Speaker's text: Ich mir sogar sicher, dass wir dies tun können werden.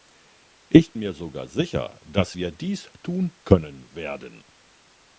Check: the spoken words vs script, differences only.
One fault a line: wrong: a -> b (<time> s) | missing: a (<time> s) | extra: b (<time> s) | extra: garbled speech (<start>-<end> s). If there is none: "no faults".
no faults